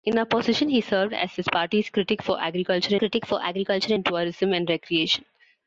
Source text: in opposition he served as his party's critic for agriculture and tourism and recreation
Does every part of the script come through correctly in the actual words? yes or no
no